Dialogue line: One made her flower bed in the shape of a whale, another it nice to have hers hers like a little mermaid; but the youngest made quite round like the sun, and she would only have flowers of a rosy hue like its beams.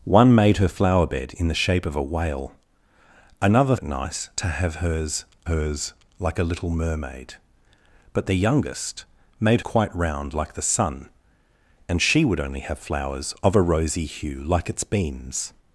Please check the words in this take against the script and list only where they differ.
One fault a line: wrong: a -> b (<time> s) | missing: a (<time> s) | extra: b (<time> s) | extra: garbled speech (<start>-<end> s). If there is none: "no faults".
no faults